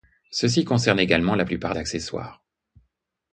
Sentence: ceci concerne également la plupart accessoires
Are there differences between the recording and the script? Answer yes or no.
no